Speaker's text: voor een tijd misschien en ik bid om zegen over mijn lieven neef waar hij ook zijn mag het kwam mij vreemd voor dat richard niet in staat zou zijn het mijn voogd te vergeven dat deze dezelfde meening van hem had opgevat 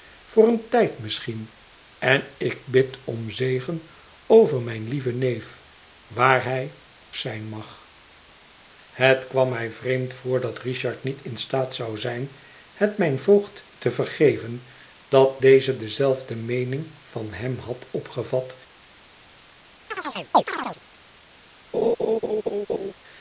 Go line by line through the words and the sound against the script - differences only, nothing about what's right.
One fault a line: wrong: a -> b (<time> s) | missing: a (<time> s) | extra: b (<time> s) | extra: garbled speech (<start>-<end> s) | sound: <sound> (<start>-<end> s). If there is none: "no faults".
sound: chirp (19.9-20.8 s)
sound: laugh (21.7-22.9 s)